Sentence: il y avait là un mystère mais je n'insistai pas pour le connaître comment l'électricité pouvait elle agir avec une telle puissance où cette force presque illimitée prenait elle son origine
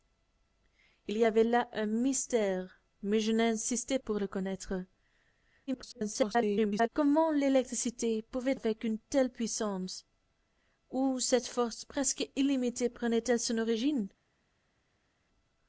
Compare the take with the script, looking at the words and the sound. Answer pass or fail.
fail